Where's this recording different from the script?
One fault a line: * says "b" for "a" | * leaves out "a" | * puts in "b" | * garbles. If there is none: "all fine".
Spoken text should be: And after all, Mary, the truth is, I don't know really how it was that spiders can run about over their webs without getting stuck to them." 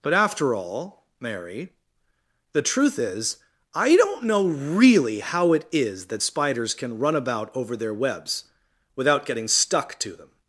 * says "But" for "And"
* says "is" for "was"